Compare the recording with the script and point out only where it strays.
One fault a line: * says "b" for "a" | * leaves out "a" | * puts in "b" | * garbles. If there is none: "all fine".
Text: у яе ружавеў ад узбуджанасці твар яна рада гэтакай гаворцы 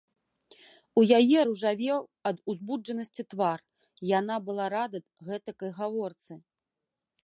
* puts in "была"